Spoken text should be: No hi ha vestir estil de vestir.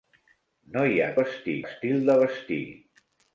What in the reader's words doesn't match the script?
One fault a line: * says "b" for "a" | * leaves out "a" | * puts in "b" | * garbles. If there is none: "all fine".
all fine